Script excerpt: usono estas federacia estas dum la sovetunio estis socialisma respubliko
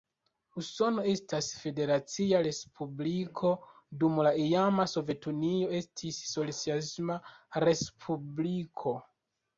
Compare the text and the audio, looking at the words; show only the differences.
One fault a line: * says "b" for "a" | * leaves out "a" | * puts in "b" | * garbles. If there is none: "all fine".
* says "respubliko" for "estas"
* puts in "iama"